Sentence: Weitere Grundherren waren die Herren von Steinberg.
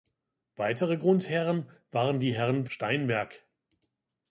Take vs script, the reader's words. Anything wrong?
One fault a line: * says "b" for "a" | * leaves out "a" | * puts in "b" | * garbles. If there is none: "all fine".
* leaves out "von"